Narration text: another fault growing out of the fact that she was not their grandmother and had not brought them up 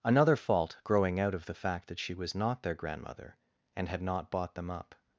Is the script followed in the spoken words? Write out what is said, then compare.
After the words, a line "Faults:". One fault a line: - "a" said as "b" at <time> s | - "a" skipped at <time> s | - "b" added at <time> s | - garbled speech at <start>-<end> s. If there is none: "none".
another fault growing out of the fact that she was not their grandmother and had not bought them up
Faults:
- "brought" said as "bought" at 4.3 s